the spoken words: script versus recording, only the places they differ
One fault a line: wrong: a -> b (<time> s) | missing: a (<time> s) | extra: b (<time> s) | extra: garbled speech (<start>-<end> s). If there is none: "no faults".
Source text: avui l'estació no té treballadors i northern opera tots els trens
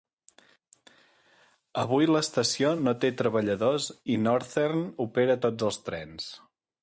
no faults